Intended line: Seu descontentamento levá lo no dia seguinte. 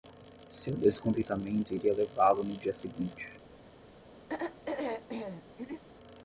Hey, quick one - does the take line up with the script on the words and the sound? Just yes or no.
no